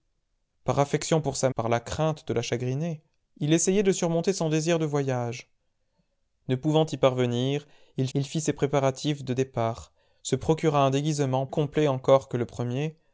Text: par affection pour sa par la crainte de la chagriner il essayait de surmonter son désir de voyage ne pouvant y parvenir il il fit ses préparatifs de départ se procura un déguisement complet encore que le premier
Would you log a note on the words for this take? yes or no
no